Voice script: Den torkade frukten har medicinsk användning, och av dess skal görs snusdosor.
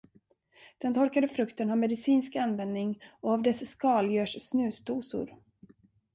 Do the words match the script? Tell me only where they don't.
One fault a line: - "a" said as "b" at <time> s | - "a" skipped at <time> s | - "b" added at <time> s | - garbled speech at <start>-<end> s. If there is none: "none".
none